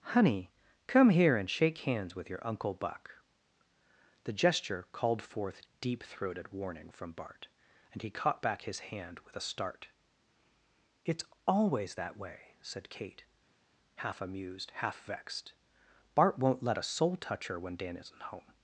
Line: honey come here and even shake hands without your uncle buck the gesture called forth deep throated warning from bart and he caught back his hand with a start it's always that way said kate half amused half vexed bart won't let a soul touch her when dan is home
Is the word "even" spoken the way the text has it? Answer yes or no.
no